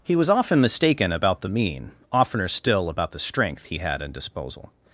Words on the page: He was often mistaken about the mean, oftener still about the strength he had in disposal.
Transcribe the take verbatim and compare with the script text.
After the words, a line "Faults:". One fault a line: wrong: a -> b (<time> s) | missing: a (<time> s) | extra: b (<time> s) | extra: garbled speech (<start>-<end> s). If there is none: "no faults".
He was often mistaken about the mean, oftener still about the strength he had in disposal.
Faults:
no faults